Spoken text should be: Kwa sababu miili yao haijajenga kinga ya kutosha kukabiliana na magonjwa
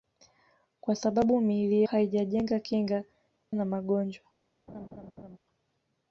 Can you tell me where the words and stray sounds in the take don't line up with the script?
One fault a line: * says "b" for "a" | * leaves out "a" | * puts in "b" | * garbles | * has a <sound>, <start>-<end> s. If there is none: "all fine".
* leaves out "yao"
* leaves out "ya kutosha kukabiliana"
* has a laugh, 4.7-5.4 s